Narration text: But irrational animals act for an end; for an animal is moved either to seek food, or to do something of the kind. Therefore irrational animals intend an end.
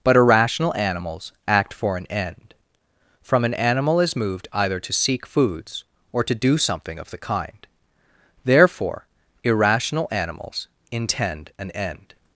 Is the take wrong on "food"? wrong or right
wrong